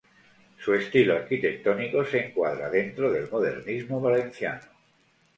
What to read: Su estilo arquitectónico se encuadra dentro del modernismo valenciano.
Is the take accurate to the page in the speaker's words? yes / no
yes